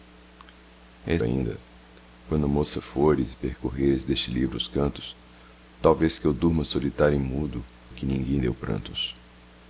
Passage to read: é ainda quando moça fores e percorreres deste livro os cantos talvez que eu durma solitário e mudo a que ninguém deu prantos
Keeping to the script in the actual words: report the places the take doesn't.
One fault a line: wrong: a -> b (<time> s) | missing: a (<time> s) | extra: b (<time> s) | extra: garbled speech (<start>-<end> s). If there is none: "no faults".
no faults